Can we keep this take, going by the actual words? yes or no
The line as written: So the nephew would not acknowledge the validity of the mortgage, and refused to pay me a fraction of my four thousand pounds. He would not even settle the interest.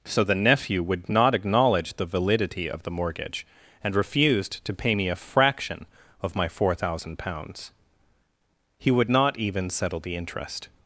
yes